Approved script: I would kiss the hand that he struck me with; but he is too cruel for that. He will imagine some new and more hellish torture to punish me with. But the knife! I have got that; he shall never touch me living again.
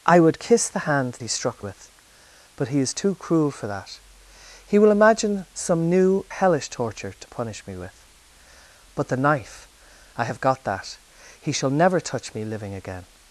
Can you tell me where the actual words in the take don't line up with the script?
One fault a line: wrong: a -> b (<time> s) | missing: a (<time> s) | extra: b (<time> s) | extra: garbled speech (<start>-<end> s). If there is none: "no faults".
missing: that (1.2 s)
missing: me (1.6 s)
missing: and more (6.3 s)